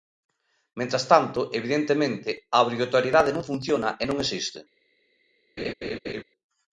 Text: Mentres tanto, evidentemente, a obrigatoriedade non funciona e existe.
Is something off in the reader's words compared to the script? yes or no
yes